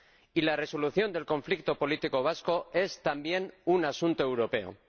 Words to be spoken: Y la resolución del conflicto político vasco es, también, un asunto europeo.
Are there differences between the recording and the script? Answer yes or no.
no